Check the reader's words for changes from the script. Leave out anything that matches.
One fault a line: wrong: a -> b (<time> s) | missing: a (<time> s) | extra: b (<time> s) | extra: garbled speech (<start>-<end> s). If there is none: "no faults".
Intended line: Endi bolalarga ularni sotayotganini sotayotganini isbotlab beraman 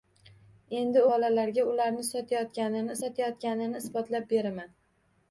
no faults